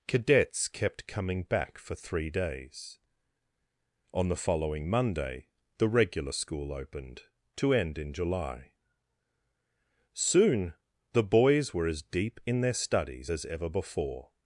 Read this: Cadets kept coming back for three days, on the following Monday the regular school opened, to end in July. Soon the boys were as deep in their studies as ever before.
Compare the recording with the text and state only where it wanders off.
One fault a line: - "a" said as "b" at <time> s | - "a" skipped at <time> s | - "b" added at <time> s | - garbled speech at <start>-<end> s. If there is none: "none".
none